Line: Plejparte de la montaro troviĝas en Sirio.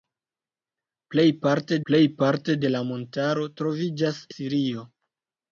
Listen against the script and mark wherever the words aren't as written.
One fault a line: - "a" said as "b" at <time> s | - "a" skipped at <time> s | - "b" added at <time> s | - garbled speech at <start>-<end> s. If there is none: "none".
- "plejparte" added at 1.9 s
- "en" skipped at 4.2 s